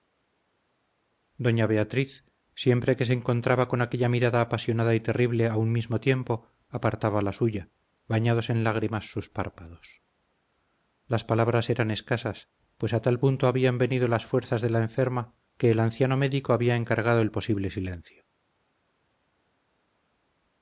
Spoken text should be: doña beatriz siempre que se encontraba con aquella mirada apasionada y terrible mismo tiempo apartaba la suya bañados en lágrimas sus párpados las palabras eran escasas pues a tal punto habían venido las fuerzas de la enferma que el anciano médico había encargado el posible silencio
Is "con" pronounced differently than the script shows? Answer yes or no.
no